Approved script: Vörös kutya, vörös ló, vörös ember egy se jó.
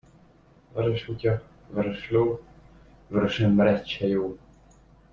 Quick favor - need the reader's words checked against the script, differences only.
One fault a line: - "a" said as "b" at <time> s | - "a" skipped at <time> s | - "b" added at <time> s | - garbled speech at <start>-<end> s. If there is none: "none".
none